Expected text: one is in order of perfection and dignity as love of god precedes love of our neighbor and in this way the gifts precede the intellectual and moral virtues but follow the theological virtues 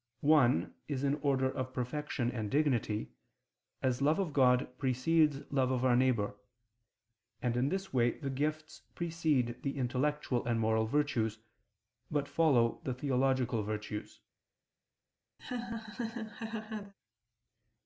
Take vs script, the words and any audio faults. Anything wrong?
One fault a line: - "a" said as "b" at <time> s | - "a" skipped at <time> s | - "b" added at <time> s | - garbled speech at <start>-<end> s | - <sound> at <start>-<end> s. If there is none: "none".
- laugh at 15.4-16.9 s